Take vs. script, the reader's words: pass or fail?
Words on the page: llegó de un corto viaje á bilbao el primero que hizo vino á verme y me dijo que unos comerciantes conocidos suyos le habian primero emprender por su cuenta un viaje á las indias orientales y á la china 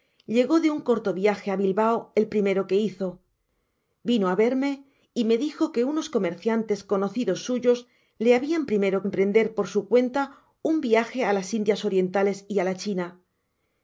pass